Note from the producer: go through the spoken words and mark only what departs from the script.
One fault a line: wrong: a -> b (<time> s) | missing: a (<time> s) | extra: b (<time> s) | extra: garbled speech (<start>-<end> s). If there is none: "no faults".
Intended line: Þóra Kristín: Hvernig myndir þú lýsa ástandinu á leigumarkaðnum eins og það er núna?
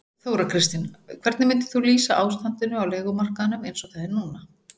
no faults